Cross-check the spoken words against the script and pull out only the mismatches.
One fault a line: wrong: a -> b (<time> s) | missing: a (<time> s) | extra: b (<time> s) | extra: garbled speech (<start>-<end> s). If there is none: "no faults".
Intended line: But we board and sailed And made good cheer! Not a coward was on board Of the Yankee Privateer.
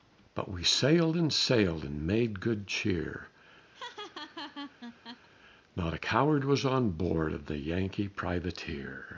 wrong: board -> sailed (0.6 s)